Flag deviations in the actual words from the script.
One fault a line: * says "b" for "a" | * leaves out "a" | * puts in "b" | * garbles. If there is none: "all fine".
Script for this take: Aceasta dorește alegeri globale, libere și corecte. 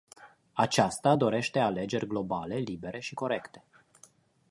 all fine